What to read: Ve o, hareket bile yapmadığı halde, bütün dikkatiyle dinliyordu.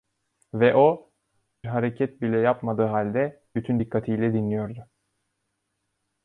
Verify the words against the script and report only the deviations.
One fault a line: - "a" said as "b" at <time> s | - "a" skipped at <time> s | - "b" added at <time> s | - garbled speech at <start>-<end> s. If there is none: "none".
none